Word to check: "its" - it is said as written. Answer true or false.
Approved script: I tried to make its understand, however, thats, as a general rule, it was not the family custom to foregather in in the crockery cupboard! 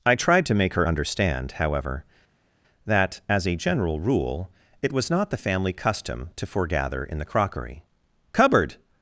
false